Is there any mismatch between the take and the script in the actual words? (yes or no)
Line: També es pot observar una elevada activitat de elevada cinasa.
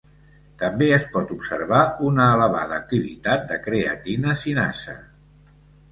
yes